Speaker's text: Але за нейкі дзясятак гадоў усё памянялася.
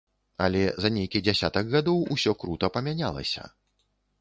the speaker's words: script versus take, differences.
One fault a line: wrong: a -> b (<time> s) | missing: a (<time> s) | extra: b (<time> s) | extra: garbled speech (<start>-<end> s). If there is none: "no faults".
extra: крута (2.4 s)